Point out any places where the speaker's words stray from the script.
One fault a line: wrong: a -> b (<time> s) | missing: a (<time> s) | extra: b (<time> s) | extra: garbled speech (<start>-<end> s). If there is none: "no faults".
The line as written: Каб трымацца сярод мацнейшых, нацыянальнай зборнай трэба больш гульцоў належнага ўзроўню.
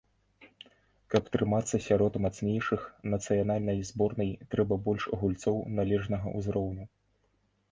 no faults